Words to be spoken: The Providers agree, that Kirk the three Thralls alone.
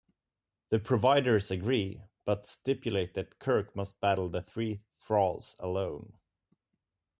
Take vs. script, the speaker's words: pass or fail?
fail